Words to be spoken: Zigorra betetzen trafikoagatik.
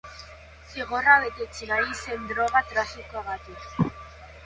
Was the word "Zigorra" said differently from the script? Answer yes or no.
no